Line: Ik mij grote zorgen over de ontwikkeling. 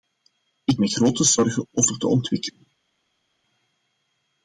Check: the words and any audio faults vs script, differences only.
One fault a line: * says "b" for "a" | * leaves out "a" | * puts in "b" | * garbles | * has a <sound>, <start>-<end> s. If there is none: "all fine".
all fine